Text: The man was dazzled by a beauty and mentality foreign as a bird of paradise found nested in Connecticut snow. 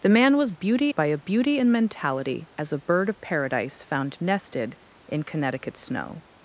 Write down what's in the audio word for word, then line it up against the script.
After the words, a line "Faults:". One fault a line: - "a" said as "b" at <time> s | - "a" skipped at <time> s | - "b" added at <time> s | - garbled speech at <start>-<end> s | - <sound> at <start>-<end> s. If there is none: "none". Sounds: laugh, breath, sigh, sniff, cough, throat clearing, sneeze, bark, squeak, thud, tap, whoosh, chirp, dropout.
The man was beauty by a beauty and mentality as a bird of paradise found nested in Connecticut snow.
Faults:
- "dazzled" said as "beauty" at 0.5 s
- "foreign" skipped at 2.5 s